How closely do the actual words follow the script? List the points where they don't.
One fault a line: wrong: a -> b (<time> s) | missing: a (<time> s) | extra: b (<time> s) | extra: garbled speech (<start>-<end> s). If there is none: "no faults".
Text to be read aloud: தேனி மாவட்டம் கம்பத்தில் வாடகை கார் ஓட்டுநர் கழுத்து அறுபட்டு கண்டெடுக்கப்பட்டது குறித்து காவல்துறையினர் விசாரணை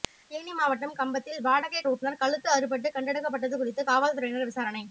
missing: கார் (1.8 s)